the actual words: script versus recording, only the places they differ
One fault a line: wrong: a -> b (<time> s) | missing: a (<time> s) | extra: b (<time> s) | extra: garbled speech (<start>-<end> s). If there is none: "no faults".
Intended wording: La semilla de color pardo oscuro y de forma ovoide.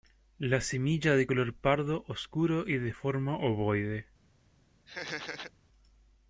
no faults